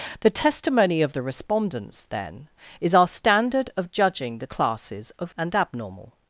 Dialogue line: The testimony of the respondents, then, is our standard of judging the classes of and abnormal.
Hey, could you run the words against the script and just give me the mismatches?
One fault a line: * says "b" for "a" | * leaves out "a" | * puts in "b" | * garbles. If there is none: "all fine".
all fine